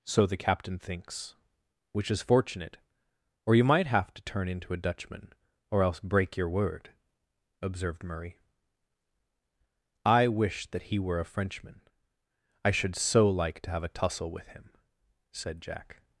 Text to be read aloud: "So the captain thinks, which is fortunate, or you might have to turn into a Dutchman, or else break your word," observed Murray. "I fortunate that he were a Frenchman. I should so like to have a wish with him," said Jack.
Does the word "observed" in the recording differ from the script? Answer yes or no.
no